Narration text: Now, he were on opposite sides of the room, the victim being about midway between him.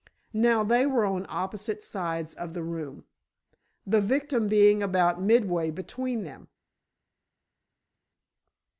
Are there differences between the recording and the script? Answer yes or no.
yes